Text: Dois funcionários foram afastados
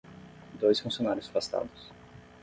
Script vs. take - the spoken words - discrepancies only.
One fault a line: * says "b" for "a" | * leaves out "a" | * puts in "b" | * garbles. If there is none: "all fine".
* leaves out "foram"